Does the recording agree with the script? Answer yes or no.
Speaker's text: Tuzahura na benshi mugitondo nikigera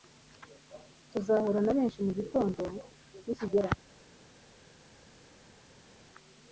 yes